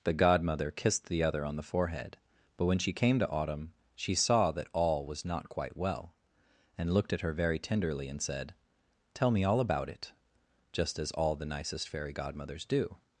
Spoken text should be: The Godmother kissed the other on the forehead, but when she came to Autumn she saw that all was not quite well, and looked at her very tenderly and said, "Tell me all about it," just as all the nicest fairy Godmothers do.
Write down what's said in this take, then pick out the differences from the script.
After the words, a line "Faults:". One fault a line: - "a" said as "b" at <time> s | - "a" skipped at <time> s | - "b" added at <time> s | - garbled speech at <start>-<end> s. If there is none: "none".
The Godmother kissed the other on the forehead, but when she came to Autumn she saw that all was not quite well, and looked at her very tenderly and said, "Tell me all about it," just as all the nicest fairy Godmothers do.
Faults:
none